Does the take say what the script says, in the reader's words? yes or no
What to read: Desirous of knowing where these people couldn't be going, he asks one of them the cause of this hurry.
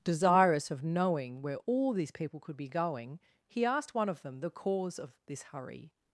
no